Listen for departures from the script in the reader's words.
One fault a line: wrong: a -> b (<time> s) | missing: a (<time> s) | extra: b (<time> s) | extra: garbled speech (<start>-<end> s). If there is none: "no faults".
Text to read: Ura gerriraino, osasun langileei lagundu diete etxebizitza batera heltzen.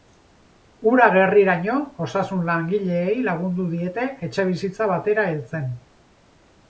no faults